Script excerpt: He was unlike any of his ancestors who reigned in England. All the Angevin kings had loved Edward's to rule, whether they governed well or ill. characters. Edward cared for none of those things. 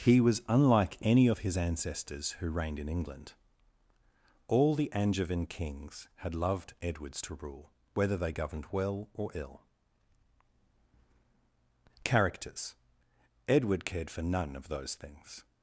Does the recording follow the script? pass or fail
pass